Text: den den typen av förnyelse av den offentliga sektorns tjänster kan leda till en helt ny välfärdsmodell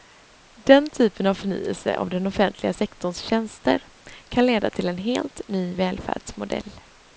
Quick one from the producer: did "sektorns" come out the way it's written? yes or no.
yes